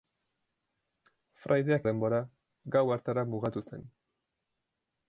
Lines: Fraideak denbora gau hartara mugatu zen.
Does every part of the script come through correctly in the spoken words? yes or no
yes